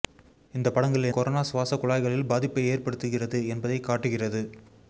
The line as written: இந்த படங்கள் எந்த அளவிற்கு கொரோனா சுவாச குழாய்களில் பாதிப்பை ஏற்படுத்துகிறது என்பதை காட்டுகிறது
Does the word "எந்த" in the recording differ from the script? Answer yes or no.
yes